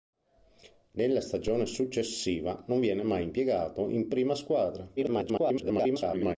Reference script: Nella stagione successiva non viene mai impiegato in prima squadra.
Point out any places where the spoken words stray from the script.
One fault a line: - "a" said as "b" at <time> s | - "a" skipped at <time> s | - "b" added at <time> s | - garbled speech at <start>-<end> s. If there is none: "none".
- garbled speech at 5.0-6.4 s